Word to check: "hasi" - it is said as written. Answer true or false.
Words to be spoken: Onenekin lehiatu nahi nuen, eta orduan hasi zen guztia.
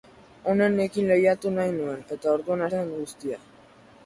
false